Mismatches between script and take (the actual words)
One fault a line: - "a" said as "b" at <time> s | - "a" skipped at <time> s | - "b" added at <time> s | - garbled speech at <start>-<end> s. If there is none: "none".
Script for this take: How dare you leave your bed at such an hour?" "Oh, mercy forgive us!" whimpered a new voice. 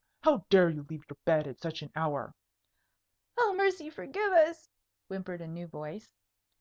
none